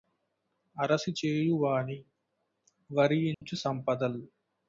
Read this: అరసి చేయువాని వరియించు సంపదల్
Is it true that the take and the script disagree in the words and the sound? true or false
true